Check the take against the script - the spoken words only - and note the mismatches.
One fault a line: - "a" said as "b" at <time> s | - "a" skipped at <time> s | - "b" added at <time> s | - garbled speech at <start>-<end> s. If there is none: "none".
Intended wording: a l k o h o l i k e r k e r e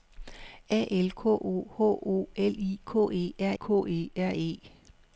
none